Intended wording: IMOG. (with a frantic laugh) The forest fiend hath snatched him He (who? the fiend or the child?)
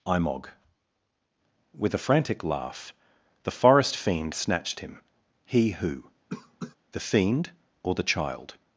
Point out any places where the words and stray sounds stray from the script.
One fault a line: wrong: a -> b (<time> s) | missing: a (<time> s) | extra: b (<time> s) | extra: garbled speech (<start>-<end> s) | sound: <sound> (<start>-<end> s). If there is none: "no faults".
missing: hath (4.3 s)
sound: cough (6.3-6.8 s)